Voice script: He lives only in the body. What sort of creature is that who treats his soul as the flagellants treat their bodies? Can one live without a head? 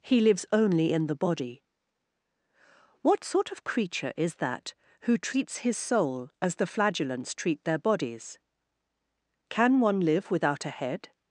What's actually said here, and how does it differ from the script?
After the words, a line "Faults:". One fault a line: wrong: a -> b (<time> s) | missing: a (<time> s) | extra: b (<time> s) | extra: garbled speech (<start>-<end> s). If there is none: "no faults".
He lives only in the body. What sort of creature is that who treats his soul as the flagellants treat their bodies? Can one live without a head?
Faults:
no faults